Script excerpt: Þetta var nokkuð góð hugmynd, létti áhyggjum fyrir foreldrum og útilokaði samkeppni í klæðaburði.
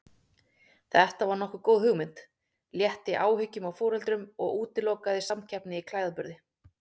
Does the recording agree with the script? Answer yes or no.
no